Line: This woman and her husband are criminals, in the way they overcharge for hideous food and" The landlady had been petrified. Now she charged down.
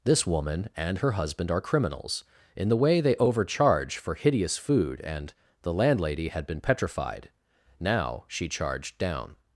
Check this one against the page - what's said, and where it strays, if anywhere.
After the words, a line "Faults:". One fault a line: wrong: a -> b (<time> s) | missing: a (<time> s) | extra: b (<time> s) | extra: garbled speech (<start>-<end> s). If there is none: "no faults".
This woman and her husband are criminals, in the way they overcharge for hideous food and" The landlady had been petrified. Now she charged down.
Faults:
no faults